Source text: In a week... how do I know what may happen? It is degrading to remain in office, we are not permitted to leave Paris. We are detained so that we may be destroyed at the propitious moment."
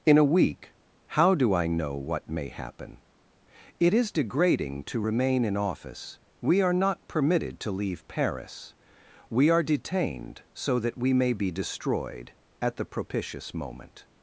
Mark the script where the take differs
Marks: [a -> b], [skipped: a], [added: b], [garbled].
In a week... how do I know what may happen? It is degrading to remain in office, we are not permitted to leave Paris. We are detained so that we may be destroyed at the propitious moment."